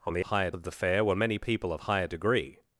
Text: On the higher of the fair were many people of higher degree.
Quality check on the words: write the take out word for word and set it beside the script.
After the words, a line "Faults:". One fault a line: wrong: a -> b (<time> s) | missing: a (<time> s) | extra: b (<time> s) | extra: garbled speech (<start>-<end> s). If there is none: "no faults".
On the higher of the fair were many people of higher degree.
Faults:
no faults